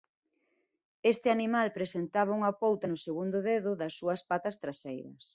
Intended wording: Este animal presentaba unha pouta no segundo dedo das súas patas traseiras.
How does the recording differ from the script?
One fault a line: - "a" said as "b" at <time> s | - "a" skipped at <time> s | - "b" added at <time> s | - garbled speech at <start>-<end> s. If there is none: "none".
none